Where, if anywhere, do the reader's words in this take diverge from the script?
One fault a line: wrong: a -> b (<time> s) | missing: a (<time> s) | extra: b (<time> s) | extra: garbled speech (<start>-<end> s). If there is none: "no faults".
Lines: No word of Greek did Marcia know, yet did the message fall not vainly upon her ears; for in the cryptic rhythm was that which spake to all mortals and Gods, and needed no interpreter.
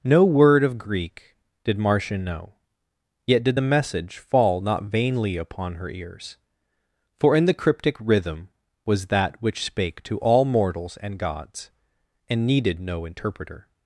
no faults